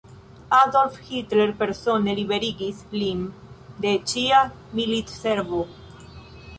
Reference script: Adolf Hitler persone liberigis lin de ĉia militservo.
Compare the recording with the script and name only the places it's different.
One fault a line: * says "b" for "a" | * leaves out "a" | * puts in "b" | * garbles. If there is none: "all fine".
all fine